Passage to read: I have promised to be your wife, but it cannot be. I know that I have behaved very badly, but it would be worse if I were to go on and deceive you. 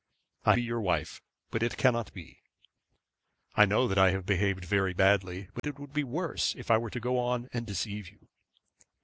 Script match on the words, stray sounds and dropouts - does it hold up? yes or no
no